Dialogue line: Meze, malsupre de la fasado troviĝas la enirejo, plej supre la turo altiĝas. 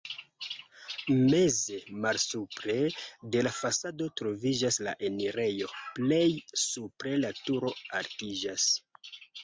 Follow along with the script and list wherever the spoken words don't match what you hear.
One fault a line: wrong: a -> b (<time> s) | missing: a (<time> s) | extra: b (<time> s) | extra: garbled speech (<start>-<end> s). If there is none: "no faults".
no faults